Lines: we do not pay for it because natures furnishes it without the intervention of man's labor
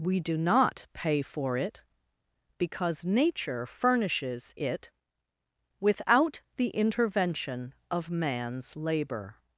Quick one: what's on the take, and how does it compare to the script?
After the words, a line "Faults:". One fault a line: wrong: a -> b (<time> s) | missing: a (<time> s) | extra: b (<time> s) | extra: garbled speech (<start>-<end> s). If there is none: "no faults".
we do not pay for it because nature furnishes it without the intervention of man's labor
Faults:
wrong: natures -> nature (3.0 s)